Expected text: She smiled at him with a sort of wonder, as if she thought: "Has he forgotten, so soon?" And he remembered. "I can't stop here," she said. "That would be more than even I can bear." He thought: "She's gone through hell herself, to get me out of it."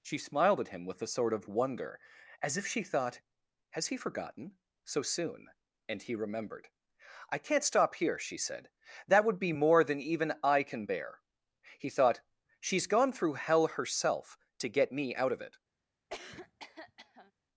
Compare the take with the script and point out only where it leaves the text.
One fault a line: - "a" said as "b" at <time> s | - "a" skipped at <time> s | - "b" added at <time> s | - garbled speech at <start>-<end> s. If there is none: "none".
none